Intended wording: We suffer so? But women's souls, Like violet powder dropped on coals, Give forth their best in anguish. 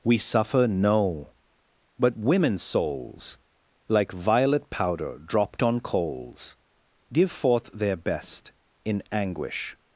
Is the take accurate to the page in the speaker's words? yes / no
no